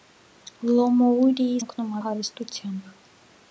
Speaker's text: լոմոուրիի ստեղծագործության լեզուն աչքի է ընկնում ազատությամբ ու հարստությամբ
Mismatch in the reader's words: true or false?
true